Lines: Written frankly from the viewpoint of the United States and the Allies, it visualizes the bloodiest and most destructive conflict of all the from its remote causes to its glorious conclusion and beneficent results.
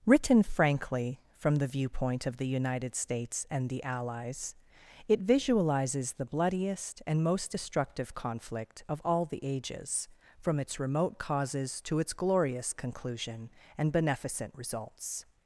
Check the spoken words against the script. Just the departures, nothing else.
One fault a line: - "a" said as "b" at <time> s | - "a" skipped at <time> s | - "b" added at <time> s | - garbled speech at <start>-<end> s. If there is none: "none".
- "ages" added at 9.4 s